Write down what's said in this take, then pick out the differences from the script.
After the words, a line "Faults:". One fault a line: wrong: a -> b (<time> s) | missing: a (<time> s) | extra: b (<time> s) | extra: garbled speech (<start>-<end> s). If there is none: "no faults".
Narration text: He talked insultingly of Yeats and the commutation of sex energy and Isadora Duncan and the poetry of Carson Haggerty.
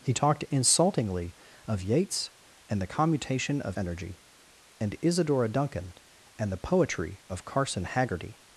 He talked insultingly of Yeats and the commutation of energy and Isadora Duncan and the poetry of Carson Haggerty.
Faults:
missing: sex (3.8 s)